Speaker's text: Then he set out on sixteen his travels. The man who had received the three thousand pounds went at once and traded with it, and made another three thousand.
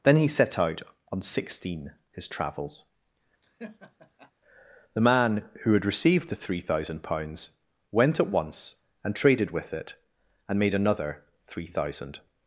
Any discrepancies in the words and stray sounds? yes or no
yes